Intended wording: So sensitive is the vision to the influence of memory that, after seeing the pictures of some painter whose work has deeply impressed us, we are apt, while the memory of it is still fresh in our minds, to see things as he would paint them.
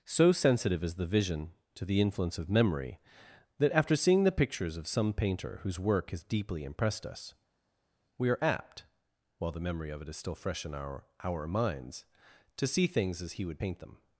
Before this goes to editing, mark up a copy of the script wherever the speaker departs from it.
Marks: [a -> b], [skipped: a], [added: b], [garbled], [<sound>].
So sensitive is the vision to the influence of memory that, after seeing the pictures of some painter whose work has deeply impressed us, we are apt, while the memory of it is still fresh in our [added: our] minds, to see things as he would paint them.